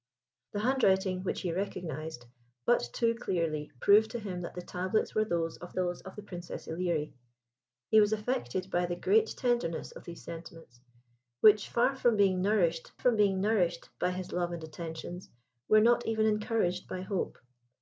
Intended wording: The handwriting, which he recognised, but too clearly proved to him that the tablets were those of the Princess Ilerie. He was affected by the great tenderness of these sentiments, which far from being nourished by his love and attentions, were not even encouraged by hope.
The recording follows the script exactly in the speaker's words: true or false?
false